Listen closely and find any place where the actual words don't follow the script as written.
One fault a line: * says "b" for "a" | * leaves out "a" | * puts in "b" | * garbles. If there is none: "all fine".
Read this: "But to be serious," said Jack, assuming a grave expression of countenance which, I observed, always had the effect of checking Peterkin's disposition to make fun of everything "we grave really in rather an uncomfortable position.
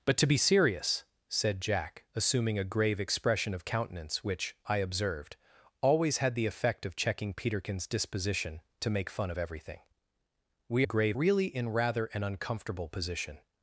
all fine